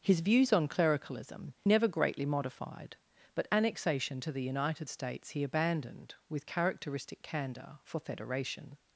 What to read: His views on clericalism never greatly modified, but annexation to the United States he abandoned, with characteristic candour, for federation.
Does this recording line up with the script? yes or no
yes